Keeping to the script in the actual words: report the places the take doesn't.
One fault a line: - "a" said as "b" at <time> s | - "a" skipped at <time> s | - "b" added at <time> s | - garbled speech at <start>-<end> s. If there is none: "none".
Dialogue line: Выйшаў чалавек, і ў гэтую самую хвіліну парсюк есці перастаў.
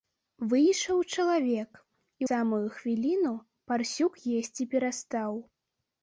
- "ў гэтую" skipped at 2.2 s